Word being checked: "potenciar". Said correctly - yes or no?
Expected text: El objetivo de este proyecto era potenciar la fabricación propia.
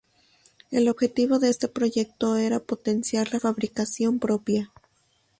yes